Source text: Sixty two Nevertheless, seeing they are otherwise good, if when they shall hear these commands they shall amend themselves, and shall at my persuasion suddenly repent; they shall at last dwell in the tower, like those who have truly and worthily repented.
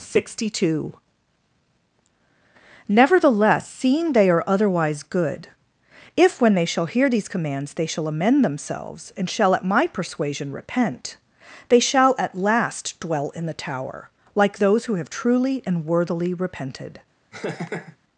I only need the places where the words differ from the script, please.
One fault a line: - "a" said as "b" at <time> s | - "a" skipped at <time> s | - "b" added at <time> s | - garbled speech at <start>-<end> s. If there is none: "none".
- "suddenly" skipped at 10.5 s